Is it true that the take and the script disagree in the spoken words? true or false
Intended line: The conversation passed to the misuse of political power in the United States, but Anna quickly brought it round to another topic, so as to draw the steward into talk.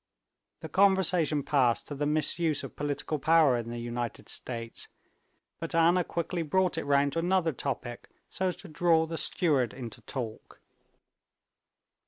false